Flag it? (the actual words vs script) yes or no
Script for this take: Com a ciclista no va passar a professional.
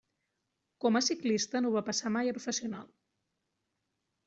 yes